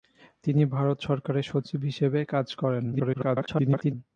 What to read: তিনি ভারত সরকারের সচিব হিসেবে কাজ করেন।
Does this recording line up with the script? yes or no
no